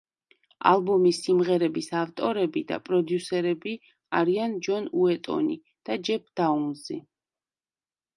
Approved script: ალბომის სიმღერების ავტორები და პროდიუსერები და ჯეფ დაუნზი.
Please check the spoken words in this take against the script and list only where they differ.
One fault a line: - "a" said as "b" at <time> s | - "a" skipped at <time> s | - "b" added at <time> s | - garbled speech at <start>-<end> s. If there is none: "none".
- "არიან ჯონ უეტონი" added at 4.2 s